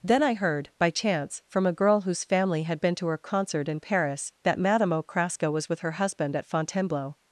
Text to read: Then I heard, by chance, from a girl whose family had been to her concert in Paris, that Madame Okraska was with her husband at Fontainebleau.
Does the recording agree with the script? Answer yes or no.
yes